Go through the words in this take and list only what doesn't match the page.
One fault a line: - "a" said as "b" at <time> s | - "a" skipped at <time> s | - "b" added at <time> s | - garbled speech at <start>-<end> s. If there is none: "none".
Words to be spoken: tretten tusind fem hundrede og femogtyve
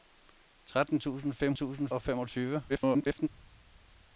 - "hundrede" said as "tusind" at 1.5 s
- garbled speech at 2.7-3.3 s